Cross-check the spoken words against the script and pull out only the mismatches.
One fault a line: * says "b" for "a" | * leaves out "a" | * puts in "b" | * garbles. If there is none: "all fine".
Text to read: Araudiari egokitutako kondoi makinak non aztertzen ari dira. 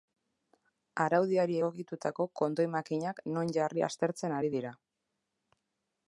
* puts in "jarri"